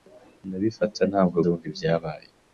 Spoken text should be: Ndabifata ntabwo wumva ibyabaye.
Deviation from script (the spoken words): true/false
false